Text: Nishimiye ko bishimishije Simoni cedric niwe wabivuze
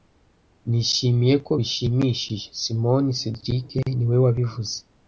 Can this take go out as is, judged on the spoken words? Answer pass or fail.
pass